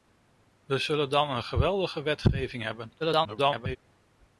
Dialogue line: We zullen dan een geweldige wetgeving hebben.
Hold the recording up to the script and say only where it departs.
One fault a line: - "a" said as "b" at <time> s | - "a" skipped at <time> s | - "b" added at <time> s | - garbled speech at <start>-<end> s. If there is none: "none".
- garbled speech at 3.0-3.8 s